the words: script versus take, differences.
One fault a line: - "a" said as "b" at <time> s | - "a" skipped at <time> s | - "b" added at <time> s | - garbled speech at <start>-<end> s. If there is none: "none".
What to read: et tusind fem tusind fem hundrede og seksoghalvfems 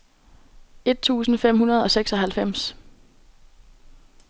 - "tusind fem" skipped at 1.6 s